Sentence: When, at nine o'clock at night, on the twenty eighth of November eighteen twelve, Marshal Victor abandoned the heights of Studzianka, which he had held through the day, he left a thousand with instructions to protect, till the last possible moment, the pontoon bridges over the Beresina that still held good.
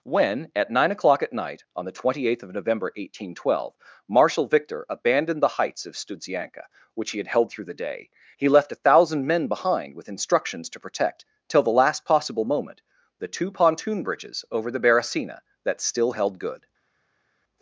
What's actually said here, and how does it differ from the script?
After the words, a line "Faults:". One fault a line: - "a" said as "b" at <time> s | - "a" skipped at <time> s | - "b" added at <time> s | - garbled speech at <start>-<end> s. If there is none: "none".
When, at nine o'clock at night, on the twenty eighth of November eighteen twelve, Marshal Victor abandoned the heights of Studzianka, which he had held through the day, he left a thousand men behind with instructions to protect, till the last possible moment, the two pontoon bridges over the Beresina that still held good.
Faults:
- "men behind" added at 9.3 s
- "two" added at 13.3 s